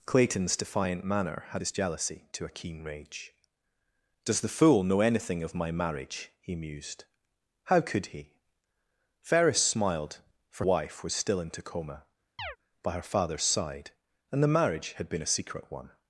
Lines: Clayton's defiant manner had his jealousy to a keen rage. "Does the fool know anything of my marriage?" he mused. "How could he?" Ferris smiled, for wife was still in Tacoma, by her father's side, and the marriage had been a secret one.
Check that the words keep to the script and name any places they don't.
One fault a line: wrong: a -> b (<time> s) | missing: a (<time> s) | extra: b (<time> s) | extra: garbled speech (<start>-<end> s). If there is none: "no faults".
no faults